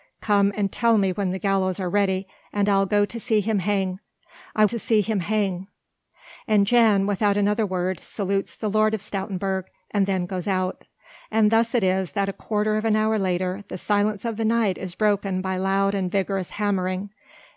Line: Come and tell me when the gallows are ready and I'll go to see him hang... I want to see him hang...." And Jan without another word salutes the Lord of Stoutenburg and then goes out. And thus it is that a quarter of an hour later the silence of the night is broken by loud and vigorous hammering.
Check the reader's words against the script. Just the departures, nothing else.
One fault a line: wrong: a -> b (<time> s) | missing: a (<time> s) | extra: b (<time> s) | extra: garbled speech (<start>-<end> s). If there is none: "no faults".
missing: want (4.7 s)